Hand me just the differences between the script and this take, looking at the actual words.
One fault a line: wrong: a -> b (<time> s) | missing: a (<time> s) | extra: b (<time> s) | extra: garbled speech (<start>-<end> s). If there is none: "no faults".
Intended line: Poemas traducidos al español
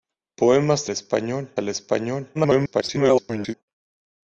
wrong: traducidos -> español (0.9 s)
extra: garbled speech (2.3-3.5 s)